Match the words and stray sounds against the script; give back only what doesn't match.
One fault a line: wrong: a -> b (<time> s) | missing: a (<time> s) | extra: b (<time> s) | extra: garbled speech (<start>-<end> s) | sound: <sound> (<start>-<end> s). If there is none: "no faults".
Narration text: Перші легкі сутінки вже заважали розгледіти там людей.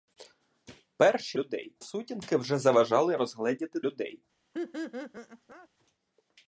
wrong: легкі -> людей (1.4 s)
missing: там (3.8 s)
sound: laugh (4.5-5.7 s)